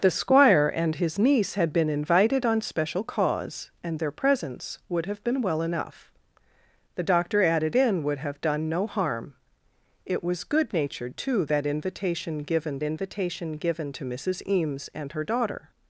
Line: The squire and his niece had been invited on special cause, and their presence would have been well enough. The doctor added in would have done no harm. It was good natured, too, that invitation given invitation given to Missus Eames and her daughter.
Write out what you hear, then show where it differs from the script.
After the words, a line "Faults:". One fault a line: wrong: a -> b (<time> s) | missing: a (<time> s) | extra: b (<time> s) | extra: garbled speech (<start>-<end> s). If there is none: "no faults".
The squire and his niece had been invited on special cause, and their presence would have been well enough. The doctor added in would have done no harm. It was good natured, too, that invitation given invitation given to Missus Eames and her daughter.
Faults:
no faults